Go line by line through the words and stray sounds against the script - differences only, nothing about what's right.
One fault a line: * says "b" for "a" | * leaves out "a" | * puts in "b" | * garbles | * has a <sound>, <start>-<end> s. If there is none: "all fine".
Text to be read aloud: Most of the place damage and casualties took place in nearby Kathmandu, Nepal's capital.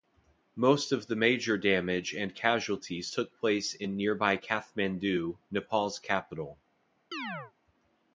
* says "major" for "place"
* has a chirp, 7.1-7.5 s